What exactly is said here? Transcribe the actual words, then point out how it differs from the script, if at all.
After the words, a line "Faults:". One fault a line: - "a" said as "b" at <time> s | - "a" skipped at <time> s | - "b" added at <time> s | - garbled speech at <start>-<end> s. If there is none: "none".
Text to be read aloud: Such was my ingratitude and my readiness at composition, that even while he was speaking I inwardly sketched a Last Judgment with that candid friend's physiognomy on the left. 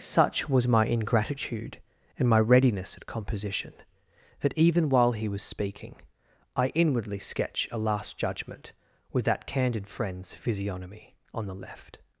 Such was my ingratitude and my readiness at composition, that even while he was speaking I inwardly sketch a Last Judgment with that candid friend's physiognomy on the left.
Faults:
- "sketched" said as "sketch" at 7.2 s